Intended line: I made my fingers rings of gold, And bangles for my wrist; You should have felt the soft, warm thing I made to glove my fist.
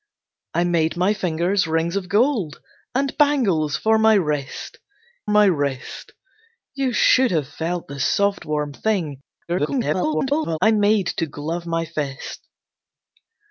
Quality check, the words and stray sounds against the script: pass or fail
fail